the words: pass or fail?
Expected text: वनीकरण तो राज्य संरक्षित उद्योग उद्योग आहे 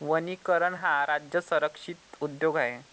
fail